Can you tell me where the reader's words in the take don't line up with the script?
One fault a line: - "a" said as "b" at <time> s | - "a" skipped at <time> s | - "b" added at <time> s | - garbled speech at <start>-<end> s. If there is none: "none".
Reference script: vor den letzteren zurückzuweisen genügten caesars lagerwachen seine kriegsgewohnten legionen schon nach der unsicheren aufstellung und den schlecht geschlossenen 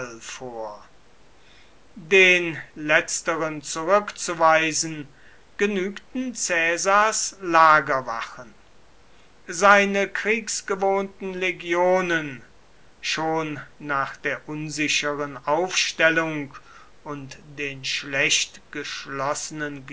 none